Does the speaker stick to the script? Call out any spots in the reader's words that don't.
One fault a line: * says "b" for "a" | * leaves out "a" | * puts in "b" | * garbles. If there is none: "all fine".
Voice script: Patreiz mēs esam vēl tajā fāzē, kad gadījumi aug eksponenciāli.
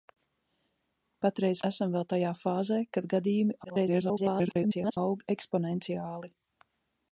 * leaves out "mēs"
* garbles